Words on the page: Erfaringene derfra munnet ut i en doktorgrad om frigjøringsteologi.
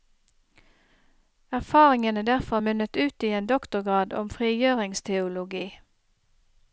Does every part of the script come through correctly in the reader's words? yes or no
yes